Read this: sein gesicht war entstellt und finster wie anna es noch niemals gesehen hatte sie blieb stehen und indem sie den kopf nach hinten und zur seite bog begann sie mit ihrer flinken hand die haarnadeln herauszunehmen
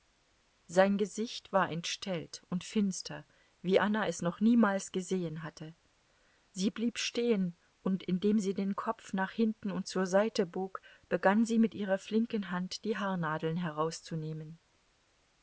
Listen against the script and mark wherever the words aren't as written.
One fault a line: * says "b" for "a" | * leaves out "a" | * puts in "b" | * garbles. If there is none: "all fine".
all fine